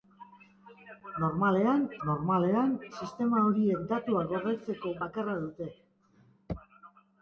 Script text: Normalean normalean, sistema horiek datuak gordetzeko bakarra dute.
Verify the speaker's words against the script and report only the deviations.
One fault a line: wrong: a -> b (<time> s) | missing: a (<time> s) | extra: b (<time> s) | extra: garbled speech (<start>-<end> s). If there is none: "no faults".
no faults